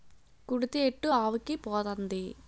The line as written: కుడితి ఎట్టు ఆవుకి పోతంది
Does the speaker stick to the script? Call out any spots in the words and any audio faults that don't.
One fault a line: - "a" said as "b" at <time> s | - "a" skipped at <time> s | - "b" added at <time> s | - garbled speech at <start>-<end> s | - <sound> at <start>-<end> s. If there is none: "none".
none